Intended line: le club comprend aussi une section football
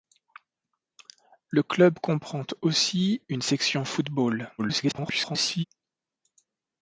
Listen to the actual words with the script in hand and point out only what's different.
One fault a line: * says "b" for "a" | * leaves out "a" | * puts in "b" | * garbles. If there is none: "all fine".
* garbles